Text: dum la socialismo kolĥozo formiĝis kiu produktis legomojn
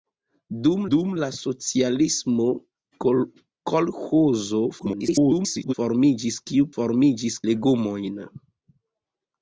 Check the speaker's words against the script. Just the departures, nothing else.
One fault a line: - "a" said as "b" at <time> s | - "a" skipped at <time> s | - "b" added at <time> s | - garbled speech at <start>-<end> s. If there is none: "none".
- "dum" added at 0.9 s
- garbled speech at 4.8-5.7 s
- "produktis" said as "formiĝis" at 6.8 s